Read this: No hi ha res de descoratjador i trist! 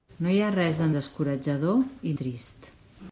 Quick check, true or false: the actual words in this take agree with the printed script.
true